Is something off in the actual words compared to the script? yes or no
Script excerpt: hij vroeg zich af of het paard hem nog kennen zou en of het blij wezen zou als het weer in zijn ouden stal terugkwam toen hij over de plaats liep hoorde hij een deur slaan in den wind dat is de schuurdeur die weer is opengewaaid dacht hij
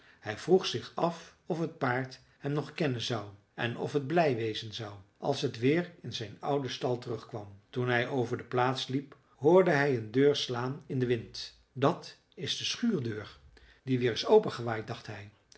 no